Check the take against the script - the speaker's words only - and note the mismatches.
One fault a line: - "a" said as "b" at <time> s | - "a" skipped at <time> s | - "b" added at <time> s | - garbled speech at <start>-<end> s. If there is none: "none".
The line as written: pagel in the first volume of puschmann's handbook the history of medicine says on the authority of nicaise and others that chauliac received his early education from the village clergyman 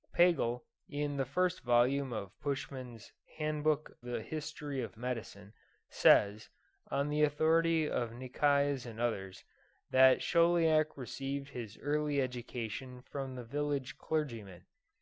none